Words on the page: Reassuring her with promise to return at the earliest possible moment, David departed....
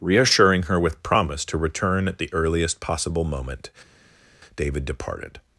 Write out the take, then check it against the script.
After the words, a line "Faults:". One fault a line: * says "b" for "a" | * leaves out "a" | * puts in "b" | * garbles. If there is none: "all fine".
Reassuring her with promise to return at the earliest possible moment, David departed....
Faults:
all fine